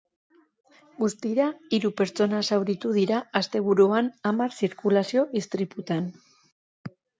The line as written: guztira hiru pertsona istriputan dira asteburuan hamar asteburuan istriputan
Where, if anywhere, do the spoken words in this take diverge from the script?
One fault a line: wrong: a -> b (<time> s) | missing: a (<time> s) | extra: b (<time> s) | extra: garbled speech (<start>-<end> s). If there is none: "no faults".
wrong: istriputan -> zauritu (2.5 s)
wrong: asteburuan -> zirkulazio (4.6 s)